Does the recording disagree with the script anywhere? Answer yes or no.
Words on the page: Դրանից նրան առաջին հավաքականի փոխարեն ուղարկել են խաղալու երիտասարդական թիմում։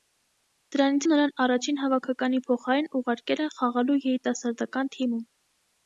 no